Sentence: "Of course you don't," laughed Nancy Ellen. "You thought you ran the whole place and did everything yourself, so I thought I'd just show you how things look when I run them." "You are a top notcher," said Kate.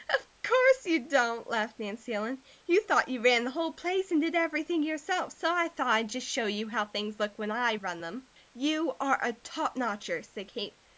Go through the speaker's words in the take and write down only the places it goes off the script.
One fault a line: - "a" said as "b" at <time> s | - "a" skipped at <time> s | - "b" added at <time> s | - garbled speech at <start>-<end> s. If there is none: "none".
none